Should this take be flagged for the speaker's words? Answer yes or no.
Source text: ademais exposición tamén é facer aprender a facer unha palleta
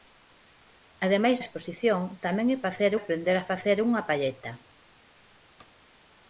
no